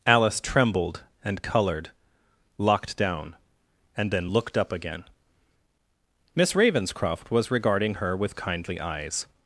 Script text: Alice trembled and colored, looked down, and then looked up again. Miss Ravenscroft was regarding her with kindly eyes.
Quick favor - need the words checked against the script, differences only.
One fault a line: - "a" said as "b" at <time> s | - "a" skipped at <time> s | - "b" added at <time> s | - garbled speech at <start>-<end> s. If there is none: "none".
- "looked" said as "locked" at 2.6 s